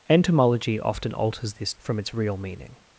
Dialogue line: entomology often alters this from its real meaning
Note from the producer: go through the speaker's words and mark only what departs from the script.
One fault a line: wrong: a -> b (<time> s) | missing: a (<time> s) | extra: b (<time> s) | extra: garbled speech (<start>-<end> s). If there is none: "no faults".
no faults